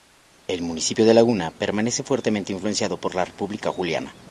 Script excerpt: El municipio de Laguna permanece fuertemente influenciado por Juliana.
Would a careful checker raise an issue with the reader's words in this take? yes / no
yes